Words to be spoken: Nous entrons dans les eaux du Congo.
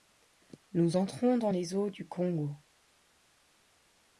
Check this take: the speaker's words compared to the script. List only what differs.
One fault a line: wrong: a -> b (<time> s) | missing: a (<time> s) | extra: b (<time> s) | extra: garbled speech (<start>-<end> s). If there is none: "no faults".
no faults